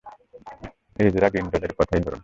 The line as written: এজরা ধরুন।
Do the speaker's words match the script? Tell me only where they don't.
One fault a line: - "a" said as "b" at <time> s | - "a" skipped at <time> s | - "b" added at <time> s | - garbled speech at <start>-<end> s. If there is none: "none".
- "গ্রিন্ডলের কথাই" added at 1.3 s